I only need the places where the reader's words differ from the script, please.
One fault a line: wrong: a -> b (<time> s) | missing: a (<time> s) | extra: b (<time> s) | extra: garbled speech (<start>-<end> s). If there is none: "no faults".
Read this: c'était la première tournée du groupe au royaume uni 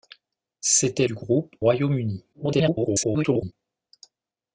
missing: la première tournée (1.1 s)
missing: au (1.6 s)
extra: garbled speech (2.3-3.5 s)